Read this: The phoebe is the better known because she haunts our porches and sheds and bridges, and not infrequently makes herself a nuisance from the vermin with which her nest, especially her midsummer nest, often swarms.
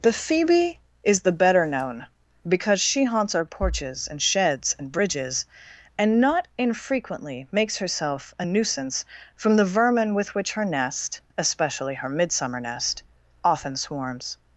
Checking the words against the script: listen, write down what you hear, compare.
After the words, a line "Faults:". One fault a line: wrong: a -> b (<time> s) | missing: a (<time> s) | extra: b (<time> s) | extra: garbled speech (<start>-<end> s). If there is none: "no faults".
The phoebe is the better known because she haunts our porches and sheds and bridges, and not infrequently makes herself a nuisance from the vermin with which her nest, especially her midsummer nest, often swarms.
Faults:
no faults